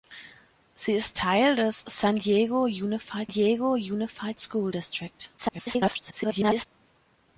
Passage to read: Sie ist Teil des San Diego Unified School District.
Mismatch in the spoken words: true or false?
true